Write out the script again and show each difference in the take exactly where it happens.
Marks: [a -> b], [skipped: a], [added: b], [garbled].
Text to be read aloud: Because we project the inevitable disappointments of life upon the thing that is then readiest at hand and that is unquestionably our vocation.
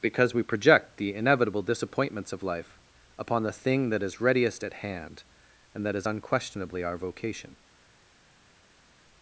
Because we project the inevitable disappointments of life upon the thing that is [skipped: then] readiest at hand and that is unquestionably our vocation.